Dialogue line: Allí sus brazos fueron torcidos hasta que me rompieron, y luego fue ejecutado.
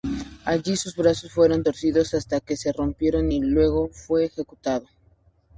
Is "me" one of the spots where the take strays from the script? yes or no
yes